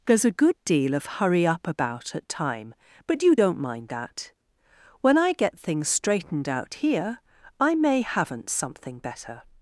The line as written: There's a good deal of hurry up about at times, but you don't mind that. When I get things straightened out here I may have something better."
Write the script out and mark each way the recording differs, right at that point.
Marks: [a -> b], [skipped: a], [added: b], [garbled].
There's a good deal of hurry up about at [times, -> time] but you don't mind that. When I get things straightened out here I may [have -> haven't] something better."